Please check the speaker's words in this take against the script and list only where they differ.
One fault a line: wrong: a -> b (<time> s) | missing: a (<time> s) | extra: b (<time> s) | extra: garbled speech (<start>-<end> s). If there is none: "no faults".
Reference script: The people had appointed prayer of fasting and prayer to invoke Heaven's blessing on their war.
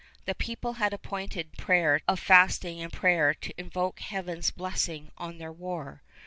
no faults